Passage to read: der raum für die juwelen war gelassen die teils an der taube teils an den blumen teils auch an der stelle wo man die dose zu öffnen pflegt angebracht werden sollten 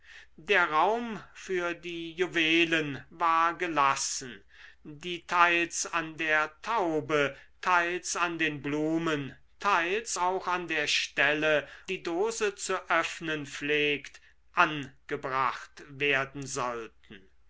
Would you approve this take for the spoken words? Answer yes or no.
no